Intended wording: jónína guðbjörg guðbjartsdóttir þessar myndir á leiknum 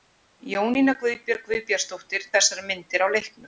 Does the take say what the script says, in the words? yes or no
yes